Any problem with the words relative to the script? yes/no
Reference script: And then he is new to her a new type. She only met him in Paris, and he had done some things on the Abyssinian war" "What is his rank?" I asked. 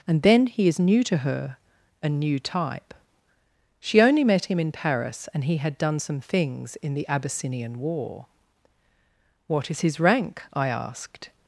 yes